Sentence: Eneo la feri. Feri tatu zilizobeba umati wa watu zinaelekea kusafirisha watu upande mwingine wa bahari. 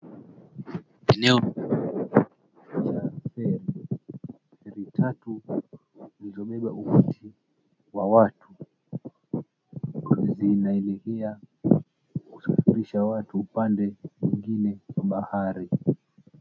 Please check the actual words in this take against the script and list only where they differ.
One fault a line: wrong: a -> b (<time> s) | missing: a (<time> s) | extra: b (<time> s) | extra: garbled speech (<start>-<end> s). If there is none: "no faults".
no faults